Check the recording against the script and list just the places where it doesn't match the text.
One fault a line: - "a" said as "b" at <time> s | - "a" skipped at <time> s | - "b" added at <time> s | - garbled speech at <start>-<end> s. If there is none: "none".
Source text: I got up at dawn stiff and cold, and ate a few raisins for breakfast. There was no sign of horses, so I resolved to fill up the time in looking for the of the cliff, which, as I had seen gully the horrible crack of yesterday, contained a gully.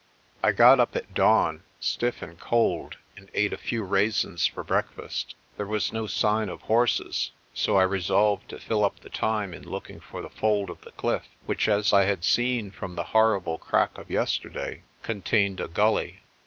- "fold" added at 10.3 s
- "gully" said as "from" at 12.7 s